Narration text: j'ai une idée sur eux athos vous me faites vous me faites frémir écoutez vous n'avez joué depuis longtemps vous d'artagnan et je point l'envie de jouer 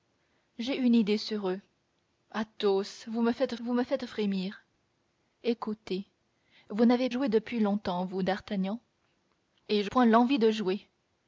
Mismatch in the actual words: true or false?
false